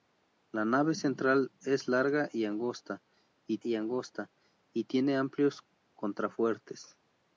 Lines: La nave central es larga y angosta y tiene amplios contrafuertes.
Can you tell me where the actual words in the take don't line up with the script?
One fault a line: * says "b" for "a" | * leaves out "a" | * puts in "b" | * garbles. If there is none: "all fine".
* puts in "y angosta y"